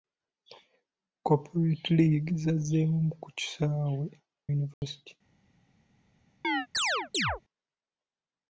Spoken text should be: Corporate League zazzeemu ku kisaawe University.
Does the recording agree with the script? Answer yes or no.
yes